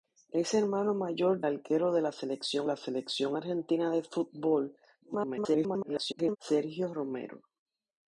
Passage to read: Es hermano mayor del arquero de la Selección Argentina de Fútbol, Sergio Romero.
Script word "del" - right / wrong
wrong